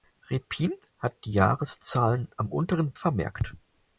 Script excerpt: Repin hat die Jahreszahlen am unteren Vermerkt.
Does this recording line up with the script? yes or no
yes